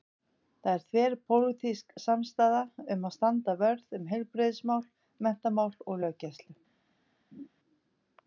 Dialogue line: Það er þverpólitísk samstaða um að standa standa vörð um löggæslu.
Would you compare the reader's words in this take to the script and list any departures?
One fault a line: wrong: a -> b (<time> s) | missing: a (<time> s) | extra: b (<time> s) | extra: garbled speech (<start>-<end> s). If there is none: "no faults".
missing: standa (3.5 s)
extra: heilbrigðismál menntamál og (4.2 s)